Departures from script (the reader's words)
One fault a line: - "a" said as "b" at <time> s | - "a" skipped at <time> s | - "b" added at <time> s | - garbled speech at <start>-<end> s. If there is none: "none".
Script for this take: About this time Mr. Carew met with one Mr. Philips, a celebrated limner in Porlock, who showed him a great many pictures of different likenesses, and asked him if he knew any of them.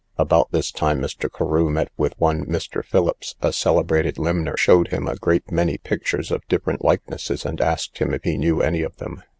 - "in Porlock who" skipped at 4.5 s